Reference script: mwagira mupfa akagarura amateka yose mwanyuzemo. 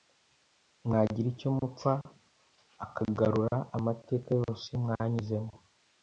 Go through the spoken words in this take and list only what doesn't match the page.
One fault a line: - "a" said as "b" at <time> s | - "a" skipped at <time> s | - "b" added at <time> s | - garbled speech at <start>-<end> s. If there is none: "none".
- "icyo" added at 1.3 s